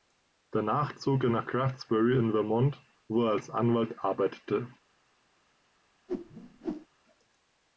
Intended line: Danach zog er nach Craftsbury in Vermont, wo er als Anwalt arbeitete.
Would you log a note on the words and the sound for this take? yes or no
yes